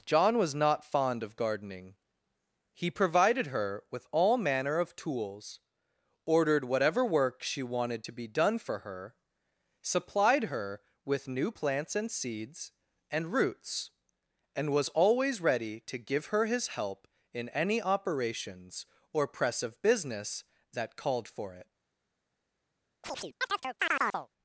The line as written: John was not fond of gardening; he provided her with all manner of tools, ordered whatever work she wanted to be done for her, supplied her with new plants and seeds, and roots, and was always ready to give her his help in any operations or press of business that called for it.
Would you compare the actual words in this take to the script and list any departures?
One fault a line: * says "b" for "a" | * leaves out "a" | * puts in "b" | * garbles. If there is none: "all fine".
all fine